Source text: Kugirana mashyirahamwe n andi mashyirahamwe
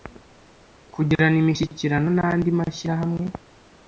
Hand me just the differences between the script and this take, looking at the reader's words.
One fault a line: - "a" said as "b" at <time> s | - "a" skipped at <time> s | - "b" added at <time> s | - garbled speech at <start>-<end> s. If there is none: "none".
- "mashyirahamwe" said as "imishyikirano" at 1.4 s